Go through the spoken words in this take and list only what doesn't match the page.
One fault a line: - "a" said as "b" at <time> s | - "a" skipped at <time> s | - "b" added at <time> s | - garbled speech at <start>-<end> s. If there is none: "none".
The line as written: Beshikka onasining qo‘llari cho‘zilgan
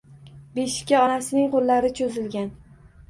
none